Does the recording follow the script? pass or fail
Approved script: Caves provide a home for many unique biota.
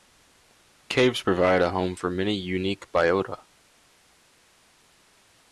pass